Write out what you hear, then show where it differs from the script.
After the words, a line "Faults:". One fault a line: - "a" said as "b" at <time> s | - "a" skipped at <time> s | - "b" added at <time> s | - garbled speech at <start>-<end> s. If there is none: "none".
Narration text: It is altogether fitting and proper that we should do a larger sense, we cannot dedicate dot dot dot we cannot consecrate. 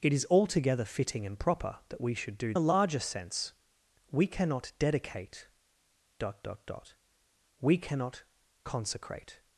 It is altogether fitting and proper that we should do a larger sense, we cannot dedicate dot dot dot we cannot consecrate.
Faults:
none